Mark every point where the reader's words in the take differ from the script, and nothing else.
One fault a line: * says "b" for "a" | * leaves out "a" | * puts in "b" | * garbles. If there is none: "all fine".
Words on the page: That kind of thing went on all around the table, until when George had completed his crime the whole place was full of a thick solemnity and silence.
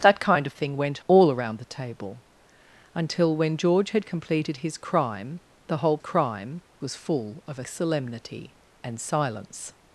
* leaves out "on"
* says "crime" for "place"
* leaves out "thick"